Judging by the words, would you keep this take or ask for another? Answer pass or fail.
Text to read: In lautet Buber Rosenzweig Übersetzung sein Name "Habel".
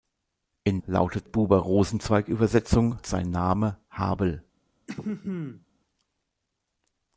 pass